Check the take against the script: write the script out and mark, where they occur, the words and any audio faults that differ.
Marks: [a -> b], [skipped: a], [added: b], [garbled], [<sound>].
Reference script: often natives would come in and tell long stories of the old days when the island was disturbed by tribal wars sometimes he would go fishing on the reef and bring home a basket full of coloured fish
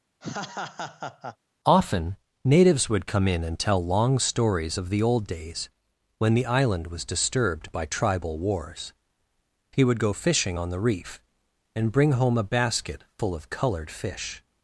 [laugh] often natives would come in and tell long stories of the old days when the island was disturbed by tribal wars [skipped: sometimes] he would go fishing on the reef and bring home a basket full of coloured fish